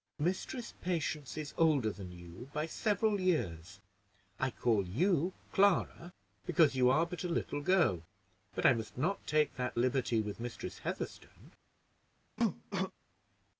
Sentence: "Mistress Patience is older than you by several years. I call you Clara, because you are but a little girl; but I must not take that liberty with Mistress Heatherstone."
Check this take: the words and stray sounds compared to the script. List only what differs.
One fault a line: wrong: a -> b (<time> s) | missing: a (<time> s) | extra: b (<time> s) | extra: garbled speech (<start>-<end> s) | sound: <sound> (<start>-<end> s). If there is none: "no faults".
sound: cough (12.4-12.9 s)